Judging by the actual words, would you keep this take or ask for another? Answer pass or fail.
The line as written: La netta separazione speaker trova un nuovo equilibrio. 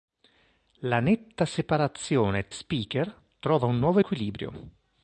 pass